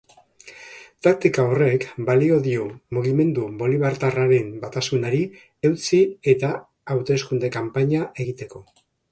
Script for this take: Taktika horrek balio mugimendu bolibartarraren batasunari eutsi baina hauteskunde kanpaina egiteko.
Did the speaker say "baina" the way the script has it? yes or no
no